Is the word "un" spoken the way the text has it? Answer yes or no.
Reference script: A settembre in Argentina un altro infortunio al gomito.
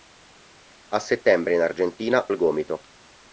no